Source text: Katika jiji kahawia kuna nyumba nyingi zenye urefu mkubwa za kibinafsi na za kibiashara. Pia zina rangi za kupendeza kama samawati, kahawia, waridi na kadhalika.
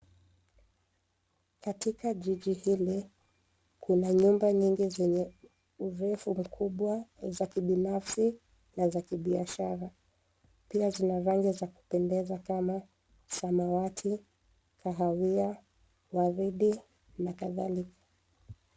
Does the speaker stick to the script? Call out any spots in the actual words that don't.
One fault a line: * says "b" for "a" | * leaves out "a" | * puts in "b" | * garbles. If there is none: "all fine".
* says "hili" for "kahawia"